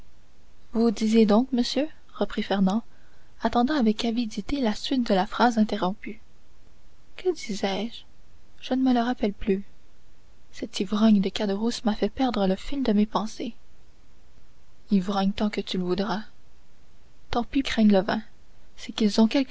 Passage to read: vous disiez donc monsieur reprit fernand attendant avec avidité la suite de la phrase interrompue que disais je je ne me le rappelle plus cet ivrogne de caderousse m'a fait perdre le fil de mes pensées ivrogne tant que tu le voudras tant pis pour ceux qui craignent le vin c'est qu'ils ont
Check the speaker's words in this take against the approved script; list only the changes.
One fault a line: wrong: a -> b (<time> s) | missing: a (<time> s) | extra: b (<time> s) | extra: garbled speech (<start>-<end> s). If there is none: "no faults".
missing: pour ceux qui (17.6 s)